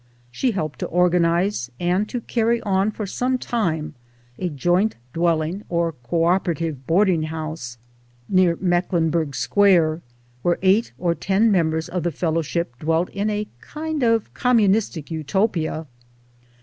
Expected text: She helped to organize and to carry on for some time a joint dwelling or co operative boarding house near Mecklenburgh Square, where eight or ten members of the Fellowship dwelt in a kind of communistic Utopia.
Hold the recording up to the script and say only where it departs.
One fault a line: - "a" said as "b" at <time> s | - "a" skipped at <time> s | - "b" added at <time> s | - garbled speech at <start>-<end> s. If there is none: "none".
none